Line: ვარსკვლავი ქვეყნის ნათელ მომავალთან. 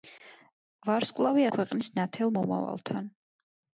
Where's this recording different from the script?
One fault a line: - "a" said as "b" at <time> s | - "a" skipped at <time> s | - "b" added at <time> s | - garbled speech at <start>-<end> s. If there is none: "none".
none